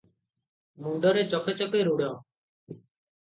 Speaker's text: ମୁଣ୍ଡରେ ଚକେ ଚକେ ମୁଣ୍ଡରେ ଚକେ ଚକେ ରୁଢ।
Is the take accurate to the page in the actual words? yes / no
no